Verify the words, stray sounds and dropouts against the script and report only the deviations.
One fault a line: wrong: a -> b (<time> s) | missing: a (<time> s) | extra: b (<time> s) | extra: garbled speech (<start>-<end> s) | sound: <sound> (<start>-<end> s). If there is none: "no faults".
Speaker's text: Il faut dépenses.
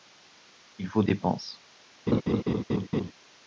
sound: laugh (2.1-3.1 s)